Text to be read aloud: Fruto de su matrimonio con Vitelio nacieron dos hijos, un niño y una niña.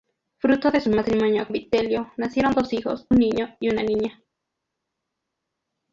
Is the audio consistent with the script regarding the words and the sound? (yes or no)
no